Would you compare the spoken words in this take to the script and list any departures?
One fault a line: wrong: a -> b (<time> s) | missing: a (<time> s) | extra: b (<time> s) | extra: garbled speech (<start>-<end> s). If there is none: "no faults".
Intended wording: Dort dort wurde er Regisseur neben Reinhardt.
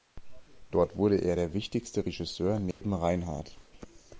missing: dort (0.9 s)
extra: der wichtigste (1.3 s)